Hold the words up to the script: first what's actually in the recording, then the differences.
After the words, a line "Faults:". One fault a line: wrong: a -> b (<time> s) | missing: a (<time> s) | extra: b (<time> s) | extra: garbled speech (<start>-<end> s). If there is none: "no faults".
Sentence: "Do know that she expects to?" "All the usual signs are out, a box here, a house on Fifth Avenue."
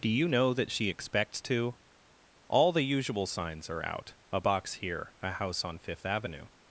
"Do you know that she expects to?" "All the usual signs are out, a box here, a house on Fifth Avenue."
Faults:
extra: you (0.1 s)